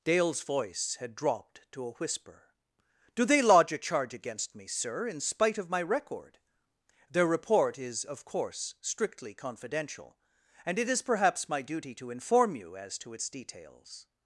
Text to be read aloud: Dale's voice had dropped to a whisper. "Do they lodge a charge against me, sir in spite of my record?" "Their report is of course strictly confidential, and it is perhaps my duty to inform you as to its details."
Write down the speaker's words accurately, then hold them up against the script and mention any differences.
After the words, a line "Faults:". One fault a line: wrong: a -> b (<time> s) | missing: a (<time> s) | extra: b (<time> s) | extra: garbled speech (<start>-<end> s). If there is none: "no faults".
Dale's voice had dropped to a whisper. "Do they lodge a charge against me, sir in spite of my record?" "Their report is of course strictly confidential, and it is perhaps my duty to inform you as to its details."
Faults:
no faults